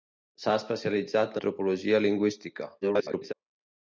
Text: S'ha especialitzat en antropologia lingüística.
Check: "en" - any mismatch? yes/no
yes